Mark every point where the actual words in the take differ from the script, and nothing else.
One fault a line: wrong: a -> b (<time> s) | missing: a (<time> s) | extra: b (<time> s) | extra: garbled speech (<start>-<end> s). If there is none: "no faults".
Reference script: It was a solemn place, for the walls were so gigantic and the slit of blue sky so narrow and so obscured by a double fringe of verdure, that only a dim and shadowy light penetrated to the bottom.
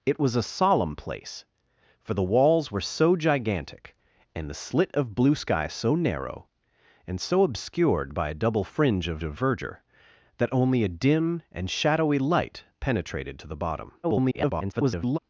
extra: of (9.2 s)
extra: garbled speech (14.0-15.2 s)